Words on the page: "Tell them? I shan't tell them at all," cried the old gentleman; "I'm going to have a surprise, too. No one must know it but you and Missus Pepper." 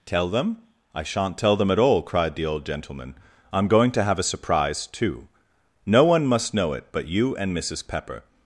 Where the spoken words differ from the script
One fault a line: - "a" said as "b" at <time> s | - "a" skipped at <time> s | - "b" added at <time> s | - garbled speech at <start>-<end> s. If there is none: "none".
none